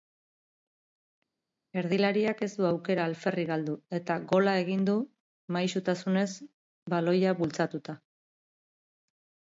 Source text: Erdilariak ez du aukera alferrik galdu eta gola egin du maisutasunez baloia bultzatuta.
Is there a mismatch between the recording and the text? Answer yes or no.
no